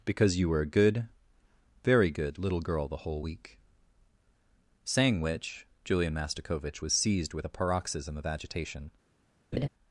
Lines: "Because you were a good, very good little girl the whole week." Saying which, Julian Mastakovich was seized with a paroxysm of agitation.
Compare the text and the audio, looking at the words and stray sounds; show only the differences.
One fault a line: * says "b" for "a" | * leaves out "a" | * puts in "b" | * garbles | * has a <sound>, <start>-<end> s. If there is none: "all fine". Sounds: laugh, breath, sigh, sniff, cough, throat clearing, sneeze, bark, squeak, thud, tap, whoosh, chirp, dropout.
* has a laugh, 9.5-9.7 s